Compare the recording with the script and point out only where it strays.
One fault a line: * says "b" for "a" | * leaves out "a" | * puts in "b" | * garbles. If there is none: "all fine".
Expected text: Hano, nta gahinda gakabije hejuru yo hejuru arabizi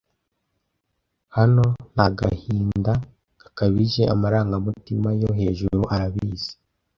* says "amarangamutima" for "hejuru"